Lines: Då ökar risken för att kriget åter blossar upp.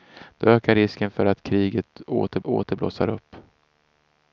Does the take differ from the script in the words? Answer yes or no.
yes